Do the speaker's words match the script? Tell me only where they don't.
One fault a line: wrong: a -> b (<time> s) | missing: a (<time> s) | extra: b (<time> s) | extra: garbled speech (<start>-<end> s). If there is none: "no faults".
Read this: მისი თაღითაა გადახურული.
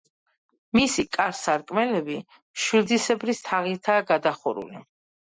extra: კარ სარკმლები მშვილდისებრი (1.2 s)